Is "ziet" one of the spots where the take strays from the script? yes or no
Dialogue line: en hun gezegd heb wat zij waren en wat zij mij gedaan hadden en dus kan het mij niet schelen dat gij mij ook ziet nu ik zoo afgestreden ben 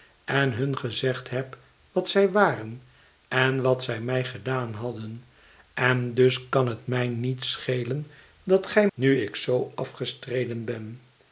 yes